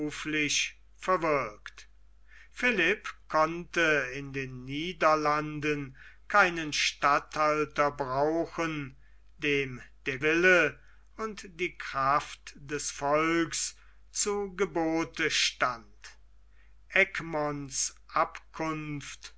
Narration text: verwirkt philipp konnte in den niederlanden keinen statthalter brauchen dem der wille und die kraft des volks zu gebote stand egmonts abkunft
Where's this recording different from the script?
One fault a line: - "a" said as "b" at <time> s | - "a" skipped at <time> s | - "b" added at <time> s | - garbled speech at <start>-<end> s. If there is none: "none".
none